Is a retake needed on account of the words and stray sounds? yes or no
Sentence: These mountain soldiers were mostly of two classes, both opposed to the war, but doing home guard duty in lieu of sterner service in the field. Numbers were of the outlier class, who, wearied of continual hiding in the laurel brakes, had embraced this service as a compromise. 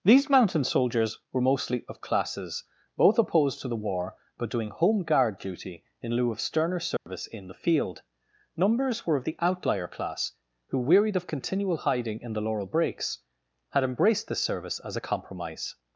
yes